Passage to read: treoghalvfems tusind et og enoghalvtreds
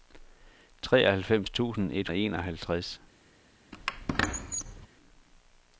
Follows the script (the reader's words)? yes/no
yes